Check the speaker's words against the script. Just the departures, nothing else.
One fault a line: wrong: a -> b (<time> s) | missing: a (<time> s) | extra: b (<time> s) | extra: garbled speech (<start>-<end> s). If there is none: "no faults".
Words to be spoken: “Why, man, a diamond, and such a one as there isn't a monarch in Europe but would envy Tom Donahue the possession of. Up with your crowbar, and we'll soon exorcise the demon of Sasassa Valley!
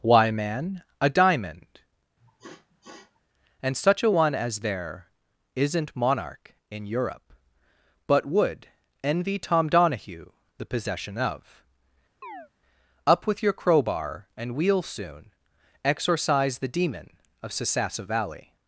missing: a (6.0 s)